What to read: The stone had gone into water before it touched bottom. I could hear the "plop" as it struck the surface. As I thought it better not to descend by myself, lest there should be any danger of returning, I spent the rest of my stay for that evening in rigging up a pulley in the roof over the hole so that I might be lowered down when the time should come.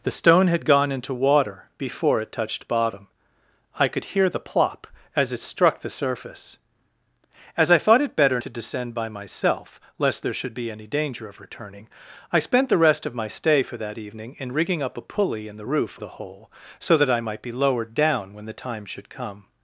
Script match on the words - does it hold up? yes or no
no